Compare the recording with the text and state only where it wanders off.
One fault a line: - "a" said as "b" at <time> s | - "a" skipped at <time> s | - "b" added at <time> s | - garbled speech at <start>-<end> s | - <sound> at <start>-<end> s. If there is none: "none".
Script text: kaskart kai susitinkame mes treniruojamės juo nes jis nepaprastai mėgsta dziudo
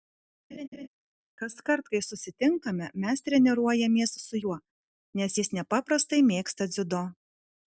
- laugh at 0.5-0.9 s
- "su" added at 4.3 s